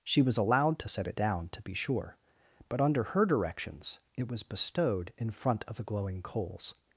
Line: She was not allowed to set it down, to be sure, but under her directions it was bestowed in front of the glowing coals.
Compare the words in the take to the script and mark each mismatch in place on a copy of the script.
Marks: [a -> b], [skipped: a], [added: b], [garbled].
She was [skipped: not] allowed to set it down, to be sure, but under her directions it was bestowed in front of the glowing coals.